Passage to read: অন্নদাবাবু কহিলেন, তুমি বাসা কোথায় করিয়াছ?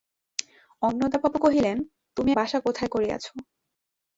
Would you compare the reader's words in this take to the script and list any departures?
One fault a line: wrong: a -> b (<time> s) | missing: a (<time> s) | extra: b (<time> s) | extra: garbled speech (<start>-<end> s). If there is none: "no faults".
no faults